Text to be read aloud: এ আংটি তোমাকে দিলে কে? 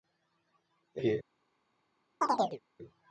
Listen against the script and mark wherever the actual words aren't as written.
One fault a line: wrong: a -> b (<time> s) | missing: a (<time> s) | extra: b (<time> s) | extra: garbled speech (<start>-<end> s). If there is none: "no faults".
missing: আংটি তোমাকে দিলে (1.0 s)